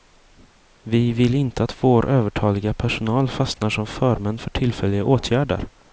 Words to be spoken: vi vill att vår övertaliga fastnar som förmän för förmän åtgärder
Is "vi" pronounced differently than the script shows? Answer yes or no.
no